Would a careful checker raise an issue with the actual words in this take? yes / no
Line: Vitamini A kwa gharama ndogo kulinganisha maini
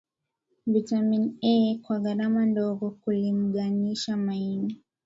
no